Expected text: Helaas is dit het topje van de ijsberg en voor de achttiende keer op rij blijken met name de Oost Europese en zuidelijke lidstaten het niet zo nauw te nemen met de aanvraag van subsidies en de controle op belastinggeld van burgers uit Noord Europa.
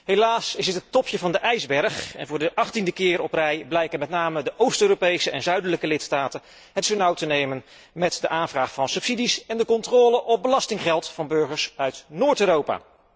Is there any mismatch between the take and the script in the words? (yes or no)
yes